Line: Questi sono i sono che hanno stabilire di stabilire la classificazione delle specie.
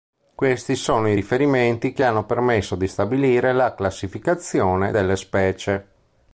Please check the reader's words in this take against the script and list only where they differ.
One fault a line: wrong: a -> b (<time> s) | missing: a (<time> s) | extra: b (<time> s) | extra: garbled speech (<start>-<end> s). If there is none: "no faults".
wrong: sono -> riferimenti (1.1 s)
wrong: stabilire -> permesso (2.2 s)